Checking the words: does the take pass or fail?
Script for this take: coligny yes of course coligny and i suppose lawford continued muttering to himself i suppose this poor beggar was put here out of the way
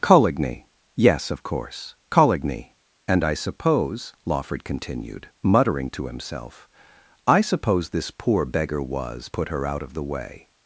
fail